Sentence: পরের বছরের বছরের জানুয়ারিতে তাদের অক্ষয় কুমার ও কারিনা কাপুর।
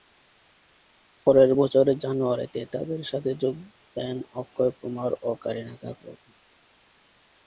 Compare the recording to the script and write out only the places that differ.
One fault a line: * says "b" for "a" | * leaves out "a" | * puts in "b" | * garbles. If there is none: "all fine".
* leaves out "বছরের"
* puts in "সাথে যোগ দেন"